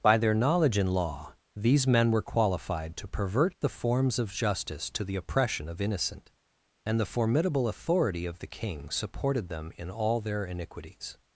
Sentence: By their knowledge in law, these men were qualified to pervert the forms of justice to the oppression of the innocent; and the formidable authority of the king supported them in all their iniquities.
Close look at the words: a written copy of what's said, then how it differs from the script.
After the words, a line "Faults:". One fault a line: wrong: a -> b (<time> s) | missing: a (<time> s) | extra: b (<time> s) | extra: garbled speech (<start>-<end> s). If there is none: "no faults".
By their knowledge in law, these men were qualified to pervert the forms of justice to the oppression of innocent; and the formidable authority of the king supported them in all their iniquities.
Faults:
missing: the (5.8 s)